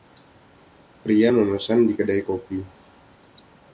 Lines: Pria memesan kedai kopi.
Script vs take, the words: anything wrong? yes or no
yes